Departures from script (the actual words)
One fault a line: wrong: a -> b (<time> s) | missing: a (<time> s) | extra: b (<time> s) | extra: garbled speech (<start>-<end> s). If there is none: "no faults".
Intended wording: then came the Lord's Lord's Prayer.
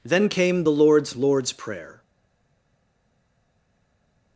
no faults